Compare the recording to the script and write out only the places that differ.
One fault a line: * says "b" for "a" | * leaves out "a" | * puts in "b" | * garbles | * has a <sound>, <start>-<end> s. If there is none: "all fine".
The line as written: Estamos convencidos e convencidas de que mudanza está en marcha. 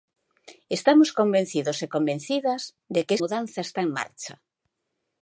all fine